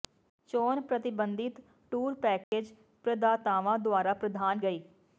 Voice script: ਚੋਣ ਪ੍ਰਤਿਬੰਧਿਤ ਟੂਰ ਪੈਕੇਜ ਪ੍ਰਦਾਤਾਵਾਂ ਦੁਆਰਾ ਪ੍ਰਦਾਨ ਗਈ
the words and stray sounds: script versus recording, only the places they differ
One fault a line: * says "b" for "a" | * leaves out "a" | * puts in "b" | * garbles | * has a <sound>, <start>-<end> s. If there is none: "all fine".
* has a dropout, 2.4-2.5 s